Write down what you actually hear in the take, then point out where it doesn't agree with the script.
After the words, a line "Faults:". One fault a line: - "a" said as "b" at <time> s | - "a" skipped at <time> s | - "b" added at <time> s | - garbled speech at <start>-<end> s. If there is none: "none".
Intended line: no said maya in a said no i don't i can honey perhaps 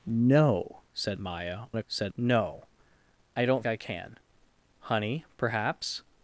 no said maya in a said no i don't i can honey perhaps
Faults:
none